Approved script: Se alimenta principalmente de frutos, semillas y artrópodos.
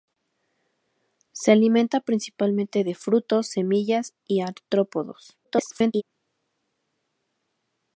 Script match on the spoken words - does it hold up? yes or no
no